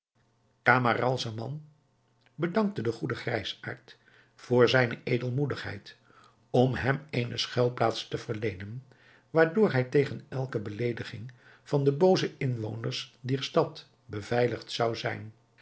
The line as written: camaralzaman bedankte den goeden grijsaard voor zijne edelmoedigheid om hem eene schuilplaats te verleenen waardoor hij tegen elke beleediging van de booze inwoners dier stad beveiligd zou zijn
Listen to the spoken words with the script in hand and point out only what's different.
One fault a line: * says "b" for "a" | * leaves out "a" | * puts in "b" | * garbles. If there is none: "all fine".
all fine